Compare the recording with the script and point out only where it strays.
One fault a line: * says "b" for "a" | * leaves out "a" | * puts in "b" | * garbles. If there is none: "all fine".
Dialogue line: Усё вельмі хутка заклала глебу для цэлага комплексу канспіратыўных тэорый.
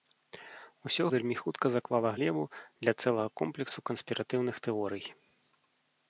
all fine